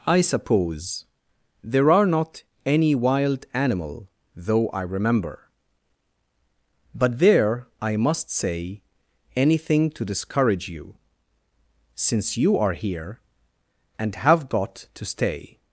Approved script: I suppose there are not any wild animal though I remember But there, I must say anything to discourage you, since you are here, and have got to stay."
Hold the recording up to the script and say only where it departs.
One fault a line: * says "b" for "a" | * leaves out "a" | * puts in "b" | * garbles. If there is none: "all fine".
all fine